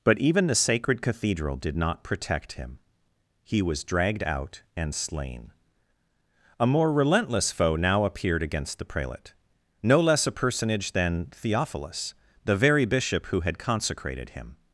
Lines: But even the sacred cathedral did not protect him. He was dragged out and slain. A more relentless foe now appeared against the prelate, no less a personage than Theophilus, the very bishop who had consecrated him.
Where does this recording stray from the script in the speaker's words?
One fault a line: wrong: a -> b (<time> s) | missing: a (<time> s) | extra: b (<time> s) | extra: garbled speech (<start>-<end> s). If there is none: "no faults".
no faults